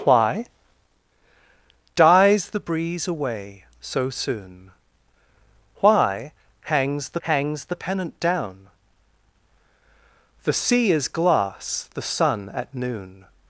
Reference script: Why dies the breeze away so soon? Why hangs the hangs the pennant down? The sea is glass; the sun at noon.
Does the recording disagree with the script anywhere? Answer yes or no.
no